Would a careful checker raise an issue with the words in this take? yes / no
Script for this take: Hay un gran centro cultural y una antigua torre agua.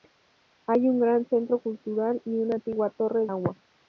no